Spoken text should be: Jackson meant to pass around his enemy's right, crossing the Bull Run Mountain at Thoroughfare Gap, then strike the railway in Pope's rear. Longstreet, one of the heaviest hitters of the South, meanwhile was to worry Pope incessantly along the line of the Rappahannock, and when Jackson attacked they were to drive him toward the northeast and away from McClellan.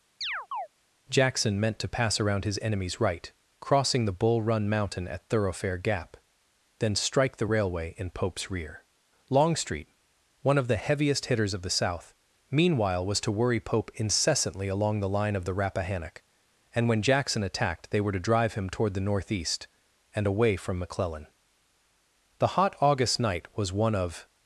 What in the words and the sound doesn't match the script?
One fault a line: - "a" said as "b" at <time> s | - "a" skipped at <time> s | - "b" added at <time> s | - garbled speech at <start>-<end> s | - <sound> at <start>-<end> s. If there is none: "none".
- chirp at 0.2-0.7 s
- "The hot August night was one of" added at 22.4 s